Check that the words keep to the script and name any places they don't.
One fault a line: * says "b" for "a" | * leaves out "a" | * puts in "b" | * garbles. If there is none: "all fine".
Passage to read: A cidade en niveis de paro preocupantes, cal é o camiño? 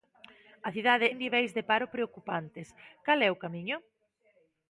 all fine